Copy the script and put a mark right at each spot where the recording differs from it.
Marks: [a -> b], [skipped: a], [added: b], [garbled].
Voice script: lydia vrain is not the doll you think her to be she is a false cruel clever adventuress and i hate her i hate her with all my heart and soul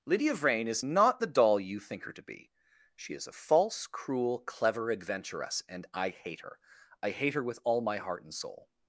lydia vrain is not the doll you think her to be she is a false cruel clever adventuress and i hate her i hate her with all my heart and soul